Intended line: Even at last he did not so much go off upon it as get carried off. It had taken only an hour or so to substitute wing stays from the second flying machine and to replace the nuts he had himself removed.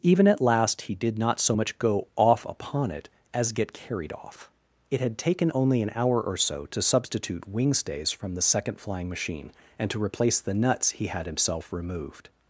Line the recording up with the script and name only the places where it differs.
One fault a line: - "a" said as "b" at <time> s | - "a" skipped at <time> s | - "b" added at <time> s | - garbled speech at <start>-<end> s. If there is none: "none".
none